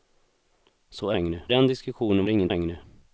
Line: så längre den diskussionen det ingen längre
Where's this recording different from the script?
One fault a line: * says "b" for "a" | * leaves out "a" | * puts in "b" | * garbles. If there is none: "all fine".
all fine